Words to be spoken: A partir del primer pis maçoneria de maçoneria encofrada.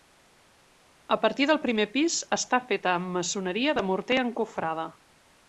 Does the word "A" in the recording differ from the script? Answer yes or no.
no